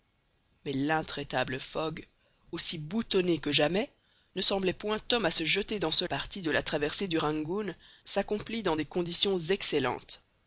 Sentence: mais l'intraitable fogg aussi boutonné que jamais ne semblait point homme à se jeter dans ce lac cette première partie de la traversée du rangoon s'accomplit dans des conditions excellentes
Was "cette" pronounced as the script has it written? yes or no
no